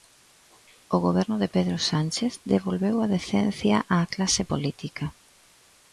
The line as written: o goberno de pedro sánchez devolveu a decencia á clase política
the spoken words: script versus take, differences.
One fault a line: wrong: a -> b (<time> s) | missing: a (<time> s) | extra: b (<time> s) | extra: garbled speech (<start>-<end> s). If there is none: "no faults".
no faults